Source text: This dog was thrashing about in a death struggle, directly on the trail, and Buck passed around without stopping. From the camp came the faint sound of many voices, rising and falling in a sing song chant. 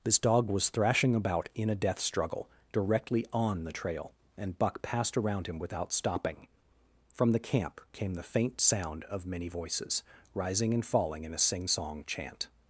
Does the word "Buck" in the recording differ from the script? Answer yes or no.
no